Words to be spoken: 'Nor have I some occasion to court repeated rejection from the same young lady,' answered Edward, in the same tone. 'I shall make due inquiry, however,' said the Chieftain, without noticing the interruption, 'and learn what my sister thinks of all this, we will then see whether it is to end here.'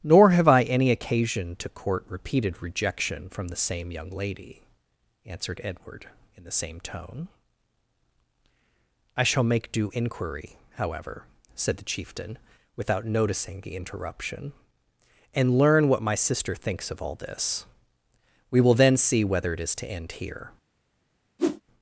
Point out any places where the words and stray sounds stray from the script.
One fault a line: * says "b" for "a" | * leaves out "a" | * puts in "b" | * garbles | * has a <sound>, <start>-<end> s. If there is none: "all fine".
* says "any" for "some"
* has a whoosh, 21.4-21.6 s